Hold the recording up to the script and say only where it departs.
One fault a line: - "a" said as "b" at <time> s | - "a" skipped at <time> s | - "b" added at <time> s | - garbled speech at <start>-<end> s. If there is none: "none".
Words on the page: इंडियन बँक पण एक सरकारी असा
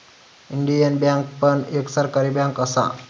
- "बँक" added at 2.3 s